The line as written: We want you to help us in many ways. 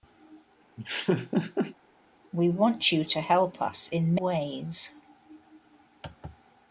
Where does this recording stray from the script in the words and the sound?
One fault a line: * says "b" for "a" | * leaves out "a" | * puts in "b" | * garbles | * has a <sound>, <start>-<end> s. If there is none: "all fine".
* has a laugh, 0.8-1.8 s
* leaves out "many"